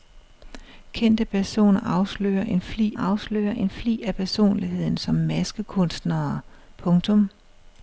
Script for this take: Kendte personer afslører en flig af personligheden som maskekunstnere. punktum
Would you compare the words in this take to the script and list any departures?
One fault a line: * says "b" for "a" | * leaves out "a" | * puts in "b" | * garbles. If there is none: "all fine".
* puts in "afslører en flig"